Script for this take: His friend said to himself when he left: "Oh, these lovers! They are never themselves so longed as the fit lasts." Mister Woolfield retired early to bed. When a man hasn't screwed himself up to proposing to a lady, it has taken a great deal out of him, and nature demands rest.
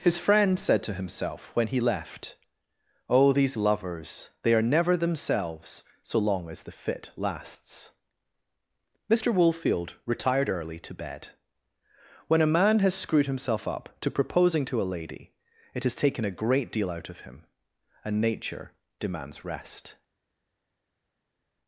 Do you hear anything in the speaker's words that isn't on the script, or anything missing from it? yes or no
yes